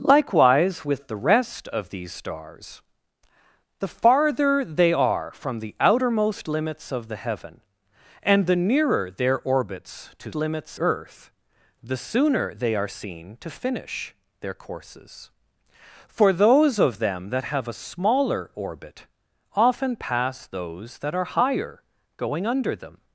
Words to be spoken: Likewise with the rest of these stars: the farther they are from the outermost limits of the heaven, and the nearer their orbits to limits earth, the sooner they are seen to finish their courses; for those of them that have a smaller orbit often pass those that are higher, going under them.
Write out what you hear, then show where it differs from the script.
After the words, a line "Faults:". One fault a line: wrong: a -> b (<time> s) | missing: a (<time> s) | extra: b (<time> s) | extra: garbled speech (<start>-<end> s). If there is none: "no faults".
Likewise with the rest of these stars: the farther they are from the outermost limits of the heaven, and the nearer their orbits to limits earth, the sooner they are seen to finish their courses; for those of them that have a smaller orbit often pass those that are higher, going under them.
Faults:
no faults